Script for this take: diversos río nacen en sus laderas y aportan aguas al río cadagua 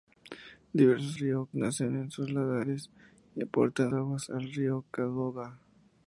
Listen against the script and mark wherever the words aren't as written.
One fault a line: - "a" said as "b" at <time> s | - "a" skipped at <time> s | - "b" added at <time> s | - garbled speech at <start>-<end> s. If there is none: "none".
none